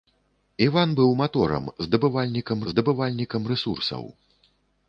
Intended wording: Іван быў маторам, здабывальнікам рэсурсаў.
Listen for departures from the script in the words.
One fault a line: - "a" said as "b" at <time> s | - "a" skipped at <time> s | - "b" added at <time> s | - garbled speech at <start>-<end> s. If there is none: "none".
- "здабывальнікам" added at 2.7 s